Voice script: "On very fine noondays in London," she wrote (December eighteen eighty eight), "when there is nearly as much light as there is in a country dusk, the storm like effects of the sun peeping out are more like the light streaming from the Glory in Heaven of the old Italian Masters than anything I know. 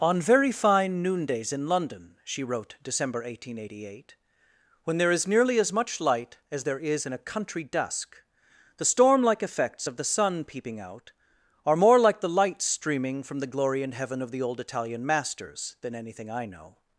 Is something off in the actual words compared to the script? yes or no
no